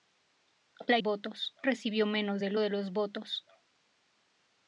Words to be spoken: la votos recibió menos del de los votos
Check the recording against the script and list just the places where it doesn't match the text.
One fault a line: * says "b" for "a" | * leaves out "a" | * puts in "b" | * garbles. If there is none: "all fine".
all fine